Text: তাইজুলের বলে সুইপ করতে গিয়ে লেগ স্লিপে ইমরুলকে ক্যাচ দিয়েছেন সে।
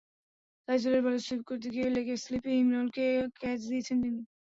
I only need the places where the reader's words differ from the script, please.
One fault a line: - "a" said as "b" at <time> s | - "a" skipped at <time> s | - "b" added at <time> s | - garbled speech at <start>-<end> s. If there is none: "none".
- "সে" said as "তিনি" at 4.0 s